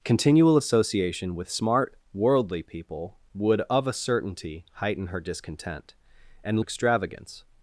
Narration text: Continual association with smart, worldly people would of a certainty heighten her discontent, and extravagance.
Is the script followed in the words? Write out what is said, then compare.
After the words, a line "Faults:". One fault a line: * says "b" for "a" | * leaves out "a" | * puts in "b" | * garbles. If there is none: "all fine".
Continual association with smart, worldly people would of a certainty heighten her discontent, and extravagance.
Faults:
all fine